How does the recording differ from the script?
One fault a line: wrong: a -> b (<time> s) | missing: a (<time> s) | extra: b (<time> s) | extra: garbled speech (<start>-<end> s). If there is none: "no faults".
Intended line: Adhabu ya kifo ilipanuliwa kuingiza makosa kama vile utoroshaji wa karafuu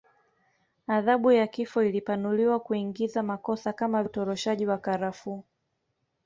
missing: vile (4.0 s)